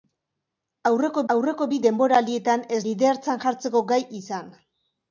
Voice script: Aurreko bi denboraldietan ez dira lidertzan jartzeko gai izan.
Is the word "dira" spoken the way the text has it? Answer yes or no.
no